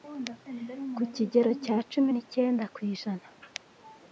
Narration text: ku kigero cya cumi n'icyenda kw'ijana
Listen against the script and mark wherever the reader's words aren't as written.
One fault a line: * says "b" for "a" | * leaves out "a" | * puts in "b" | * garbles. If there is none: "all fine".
all fine